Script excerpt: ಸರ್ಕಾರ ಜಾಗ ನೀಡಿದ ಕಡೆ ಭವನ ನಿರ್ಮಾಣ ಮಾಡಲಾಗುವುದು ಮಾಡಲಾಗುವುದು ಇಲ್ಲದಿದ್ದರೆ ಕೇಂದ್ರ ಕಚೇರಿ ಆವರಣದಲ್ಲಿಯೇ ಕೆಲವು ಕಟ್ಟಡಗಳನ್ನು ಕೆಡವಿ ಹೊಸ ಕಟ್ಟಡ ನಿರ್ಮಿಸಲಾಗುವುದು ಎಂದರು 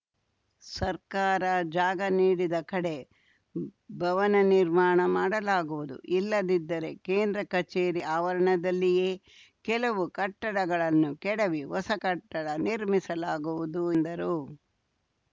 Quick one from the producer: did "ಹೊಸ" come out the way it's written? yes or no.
yes